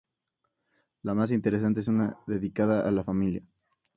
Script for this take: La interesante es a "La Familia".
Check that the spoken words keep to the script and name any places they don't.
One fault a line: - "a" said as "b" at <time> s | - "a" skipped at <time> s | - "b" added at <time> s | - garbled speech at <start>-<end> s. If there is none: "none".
- "más" added at 1.1 s
- "una dedicada" added at 1.9 s